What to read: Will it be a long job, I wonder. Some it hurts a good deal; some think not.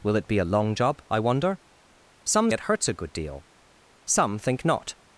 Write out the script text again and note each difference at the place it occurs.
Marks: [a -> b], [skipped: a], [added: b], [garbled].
Will it be a long job, I wonder. Some it hurts a good deal; some think not.